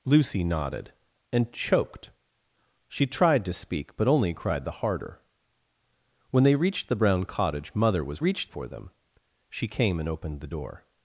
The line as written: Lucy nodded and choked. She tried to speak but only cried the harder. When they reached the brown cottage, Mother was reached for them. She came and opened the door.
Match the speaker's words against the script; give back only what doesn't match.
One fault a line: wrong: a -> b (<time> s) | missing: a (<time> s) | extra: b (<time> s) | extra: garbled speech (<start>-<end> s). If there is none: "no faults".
no faults